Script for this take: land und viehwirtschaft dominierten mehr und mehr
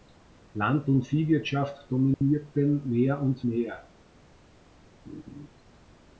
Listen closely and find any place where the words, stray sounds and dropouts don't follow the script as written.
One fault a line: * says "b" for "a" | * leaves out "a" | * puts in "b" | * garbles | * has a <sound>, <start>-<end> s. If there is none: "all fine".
* has a dropout, 2.1-2.2 s
* has a laugh, 5.1-5.5 s